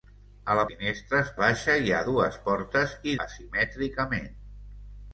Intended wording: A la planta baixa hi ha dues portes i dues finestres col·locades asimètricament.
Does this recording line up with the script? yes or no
no